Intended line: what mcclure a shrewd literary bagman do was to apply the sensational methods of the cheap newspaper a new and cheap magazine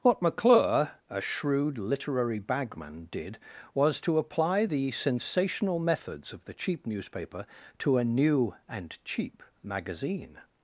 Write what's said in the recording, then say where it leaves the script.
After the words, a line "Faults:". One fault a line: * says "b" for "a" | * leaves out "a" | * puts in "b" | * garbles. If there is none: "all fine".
what mcclure a shrewd literary bagman did was to apply the sensational methods of the cheap newspaper to a new and cheap magazine
Faults:
* says "did" for "do"
* puts in "to"